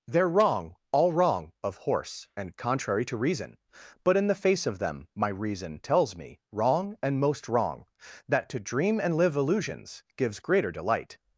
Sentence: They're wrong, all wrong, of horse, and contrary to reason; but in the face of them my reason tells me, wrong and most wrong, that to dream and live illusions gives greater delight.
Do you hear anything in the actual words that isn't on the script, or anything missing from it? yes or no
no